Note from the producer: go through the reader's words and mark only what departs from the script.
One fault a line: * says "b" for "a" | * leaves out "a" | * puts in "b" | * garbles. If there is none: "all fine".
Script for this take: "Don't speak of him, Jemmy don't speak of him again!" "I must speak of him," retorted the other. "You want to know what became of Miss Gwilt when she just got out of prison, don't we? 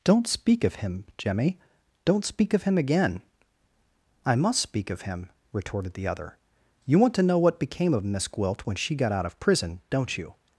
* leaves out "just"
* says "you" for "we"